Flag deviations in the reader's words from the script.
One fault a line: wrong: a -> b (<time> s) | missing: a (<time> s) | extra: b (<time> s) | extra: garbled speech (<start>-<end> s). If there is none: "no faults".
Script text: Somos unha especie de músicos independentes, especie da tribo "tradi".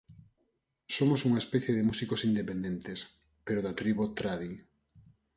wrong: especie -> pero (3.5 s)